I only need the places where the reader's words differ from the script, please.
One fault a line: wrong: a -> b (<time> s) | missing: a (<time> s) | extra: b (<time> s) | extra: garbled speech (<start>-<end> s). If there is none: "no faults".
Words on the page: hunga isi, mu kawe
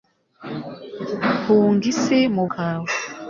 no faults